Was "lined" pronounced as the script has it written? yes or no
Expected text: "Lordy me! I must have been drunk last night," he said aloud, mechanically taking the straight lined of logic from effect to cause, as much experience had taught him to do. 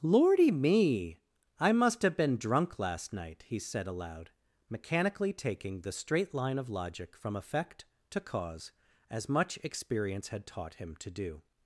no